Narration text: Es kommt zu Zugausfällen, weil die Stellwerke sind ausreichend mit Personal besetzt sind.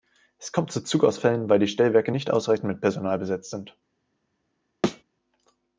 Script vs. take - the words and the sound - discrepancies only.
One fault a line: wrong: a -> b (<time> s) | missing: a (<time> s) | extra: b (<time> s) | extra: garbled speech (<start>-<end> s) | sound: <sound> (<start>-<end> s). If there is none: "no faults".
wrong: sind -> nicht (2.1 s)
sound: thud (4.8-5.0 s)